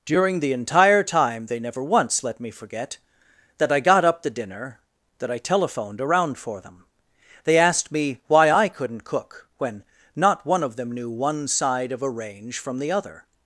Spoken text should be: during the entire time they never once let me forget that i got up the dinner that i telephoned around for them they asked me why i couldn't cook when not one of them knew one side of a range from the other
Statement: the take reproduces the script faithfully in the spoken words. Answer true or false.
true